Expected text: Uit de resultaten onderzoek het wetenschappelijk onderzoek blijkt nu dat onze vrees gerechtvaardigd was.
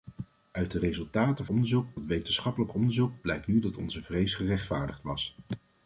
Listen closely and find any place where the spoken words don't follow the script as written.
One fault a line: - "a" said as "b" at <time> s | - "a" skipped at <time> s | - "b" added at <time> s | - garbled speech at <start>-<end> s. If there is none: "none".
none